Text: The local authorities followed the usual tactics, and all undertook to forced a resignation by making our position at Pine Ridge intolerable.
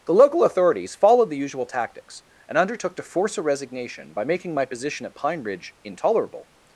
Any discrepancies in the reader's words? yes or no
yes